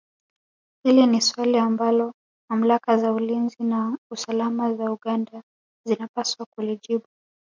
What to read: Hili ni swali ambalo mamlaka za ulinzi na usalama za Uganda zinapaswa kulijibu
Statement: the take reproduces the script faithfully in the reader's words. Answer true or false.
true